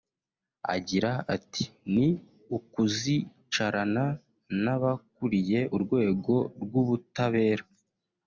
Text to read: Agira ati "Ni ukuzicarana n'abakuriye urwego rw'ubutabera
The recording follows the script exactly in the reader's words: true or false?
true